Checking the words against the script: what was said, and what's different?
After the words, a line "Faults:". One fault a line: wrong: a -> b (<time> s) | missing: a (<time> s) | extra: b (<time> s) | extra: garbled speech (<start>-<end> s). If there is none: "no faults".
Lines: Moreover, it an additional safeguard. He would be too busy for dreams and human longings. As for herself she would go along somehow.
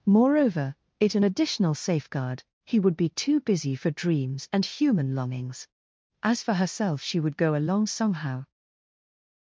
Moreover, it an additional safeguard. He would be too busy for dreams and human longings. As for herself she would go along somehow.
Faults:
no faults